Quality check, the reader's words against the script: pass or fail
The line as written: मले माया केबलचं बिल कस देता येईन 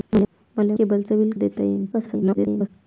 fail